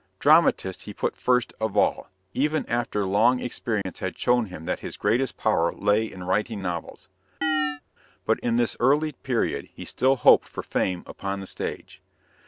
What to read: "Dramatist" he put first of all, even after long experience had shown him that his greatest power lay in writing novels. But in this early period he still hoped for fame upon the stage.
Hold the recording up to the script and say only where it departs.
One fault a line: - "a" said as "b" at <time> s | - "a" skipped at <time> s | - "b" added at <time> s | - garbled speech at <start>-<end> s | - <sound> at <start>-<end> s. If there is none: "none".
- dropout at 3.8-3.9 s
- chirp at 7.4-7.8 s